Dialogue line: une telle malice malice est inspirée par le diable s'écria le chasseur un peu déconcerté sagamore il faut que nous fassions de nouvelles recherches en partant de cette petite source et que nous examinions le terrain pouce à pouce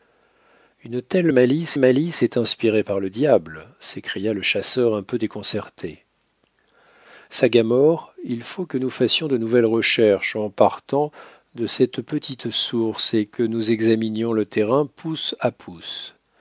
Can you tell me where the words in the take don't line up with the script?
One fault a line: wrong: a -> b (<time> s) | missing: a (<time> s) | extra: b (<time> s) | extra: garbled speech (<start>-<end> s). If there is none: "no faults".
no faults